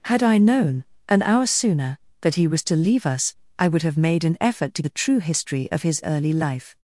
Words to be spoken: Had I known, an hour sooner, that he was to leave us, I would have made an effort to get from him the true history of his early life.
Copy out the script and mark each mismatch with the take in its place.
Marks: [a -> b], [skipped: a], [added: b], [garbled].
Had I known, an hour sooner, that he was to leave us, I would have made an effort to [skipped: get from him] the true history of his early life.